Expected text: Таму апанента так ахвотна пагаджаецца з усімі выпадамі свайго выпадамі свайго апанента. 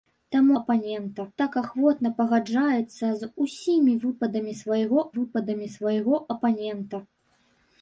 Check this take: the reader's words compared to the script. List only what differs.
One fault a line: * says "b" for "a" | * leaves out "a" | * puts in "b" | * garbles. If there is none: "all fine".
all fine